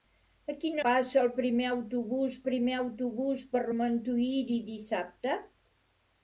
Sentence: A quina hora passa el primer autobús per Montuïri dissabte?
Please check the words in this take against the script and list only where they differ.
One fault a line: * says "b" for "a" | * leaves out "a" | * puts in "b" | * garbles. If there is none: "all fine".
* leaves out "hora"
* puts in "primer autobús"